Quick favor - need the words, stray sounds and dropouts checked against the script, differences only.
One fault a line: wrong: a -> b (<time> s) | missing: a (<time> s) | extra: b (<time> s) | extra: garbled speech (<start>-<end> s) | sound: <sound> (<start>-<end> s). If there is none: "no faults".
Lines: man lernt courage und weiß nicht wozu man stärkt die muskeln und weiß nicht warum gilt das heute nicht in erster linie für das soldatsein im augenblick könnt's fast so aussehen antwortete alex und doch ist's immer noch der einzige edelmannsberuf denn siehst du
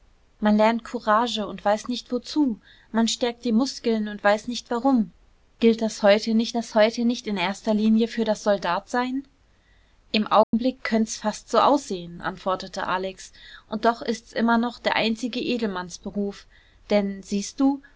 extra: das heute nicht (6.6 s)
sound: dropout (10.4-10.5 s)